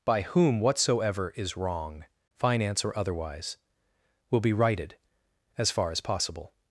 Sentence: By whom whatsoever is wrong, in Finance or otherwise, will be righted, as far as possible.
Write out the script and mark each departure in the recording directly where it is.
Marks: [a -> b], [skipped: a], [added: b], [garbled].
By whom whatsoever is wrong, [skipped: in] Finance or otherwise, will be righted, as far as possible.